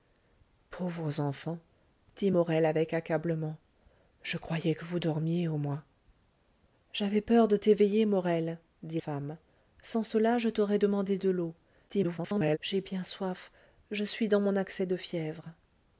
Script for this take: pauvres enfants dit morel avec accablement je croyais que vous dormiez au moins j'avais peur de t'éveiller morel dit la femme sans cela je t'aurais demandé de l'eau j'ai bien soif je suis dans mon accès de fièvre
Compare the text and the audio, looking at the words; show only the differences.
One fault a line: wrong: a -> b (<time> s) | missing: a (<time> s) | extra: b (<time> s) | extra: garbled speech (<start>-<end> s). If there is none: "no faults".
missing: la (9.0 s)
extra: garbled speech (11.9-12.6 s)